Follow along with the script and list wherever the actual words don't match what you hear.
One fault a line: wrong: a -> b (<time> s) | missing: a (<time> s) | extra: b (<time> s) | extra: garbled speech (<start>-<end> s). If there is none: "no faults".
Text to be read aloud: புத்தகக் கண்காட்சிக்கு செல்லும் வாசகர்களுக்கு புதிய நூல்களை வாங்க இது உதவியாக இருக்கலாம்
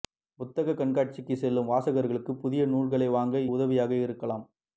missing: இது (3.4 s)